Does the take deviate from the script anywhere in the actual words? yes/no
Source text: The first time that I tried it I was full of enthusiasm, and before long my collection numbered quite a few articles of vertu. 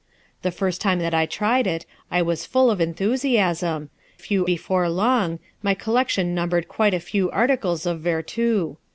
yes